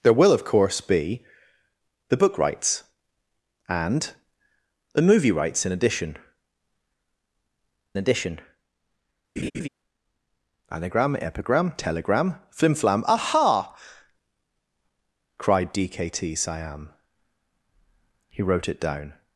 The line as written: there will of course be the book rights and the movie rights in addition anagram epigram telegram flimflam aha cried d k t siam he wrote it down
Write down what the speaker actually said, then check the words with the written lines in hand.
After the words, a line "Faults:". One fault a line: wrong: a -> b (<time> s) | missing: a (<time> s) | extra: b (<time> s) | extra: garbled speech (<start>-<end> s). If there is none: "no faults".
there will of course be the book rights and the movie rights in addition addition anagram epigram telegram flimflam aha cried d k t siam he wrote it down
Faults:
extra: addition (8.0 s)